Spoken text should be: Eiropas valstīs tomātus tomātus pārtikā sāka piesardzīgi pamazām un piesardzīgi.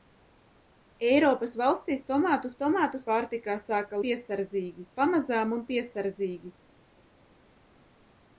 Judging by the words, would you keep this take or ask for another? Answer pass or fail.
pass